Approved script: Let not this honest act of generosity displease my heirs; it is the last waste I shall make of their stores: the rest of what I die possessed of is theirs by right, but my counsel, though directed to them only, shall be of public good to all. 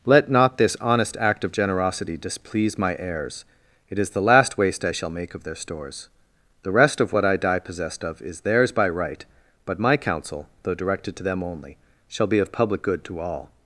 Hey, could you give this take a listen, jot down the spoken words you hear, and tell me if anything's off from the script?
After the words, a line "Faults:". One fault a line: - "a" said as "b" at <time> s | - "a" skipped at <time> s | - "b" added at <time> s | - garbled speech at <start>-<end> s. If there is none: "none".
Let not this honest act of generosity displease my heirs; it is the last waste I shall make of their stores: the rest of what I die possessed of is theirs by right, but my counsel, though directed to them only, shall be of public good to all.
Faults:
none